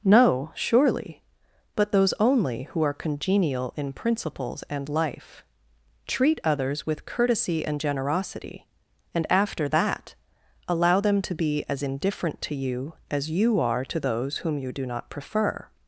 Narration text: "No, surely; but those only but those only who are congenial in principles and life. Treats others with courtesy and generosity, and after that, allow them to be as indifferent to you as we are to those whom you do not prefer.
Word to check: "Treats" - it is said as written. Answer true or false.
false